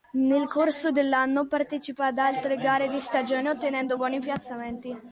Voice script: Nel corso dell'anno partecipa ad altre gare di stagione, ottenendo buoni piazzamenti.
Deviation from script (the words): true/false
false